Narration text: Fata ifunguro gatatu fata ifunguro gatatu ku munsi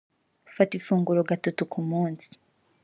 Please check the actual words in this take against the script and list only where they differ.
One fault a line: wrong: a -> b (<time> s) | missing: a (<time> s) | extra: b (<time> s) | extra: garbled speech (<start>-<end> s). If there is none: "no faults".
missing: fata ifunguro gatatu (1.6 s)